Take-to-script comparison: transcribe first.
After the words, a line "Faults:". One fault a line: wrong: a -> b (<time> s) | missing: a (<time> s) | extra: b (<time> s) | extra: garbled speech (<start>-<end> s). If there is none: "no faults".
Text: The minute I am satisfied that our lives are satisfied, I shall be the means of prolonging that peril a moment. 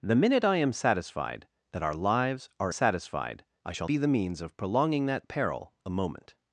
The minute I am satisfied that our lives are satisfied, I shall be the means of prolonging that peril a moment.
Faults:
no faults